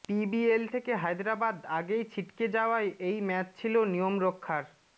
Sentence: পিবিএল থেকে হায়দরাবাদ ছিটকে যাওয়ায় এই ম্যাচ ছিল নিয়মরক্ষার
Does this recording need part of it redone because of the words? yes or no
yes